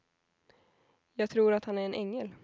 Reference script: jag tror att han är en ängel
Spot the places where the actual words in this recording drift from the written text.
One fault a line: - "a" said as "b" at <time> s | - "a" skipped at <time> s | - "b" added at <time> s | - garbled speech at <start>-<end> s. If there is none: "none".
none